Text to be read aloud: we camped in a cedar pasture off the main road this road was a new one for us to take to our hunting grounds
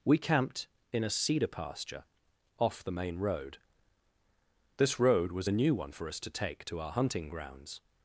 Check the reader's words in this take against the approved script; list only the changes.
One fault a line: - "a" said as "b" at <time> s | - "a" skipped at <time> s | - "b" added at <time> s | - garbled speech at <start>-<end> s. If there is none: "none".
none